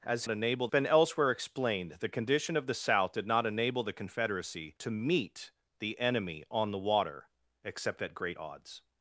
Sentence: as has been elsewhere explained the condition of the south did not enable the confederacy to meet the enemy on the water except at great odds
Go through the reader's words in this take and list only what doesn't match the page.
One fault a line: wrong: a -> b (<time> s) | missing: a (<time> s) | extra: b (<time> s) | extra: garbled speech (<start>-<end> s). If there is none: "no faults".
wrong: has -> enable (0.3 s)